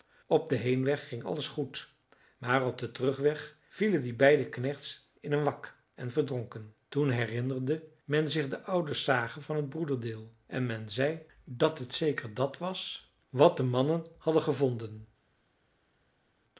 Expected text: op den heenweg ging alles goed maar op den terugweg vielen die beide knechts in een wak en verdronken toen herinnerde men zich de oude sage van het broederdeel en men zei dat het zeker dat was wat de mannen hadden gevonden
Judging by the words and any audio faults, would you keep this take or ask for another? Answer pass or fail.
pass